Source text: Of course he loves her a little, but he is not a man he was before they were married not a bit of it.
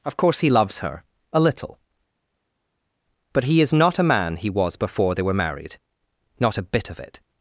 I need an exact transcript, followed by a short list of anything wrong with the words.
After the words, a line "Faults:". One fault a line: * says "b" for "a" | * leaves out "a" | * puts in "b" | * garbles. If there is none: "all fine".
Of course he loves her a little, but he is not a man he was before they were married not a bit of it.
Faults:
all fine